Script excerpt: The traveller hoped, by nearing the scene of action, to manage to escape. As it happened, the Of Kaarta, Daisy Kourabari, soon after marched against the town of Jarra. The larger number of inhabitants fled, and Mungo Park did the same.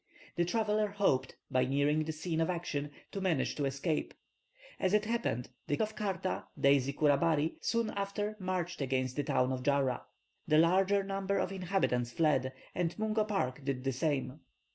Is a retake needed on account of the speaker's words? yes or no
no